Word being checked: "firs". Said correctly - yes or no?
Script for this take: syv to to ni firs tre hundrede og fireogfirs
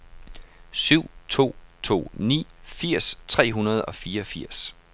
yes